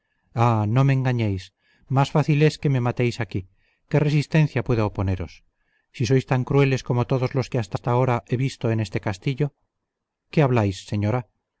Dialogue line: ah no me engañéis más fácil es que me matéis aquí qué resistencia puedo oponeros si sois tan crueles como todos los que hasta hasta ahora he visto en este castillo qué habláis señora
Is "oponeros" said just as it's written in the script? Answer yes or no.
yes